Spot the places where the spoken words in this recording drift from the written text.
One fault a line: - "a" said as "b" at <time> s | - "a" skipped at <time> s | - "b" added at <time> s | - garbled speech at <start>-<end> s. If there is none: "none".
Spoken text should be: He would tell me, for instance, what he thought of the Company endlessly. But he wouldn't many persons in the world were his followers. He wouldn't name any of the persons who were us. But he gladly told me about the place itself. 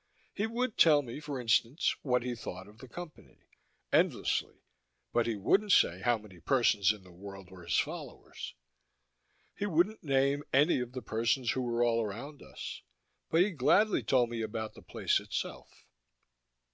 - "say how" added at 5.7 s
- "all around" added at 11.8 s